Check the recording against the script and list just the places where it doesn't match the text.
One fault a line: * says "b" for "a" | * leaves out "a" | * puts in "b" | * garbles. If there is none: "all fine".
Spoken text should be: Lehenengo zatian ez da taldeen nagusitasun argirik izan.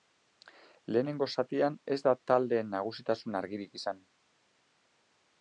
all fine